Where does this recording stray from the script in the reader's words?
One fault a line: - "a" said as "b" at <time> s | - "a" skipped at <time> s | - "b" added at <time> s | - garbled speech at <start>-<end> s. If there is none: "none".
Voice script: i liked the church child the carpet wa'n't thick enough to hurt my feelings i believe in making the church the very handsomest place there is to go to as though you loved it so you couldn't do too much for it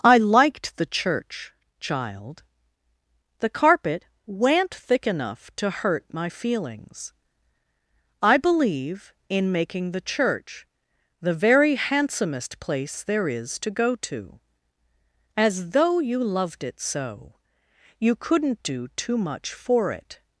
none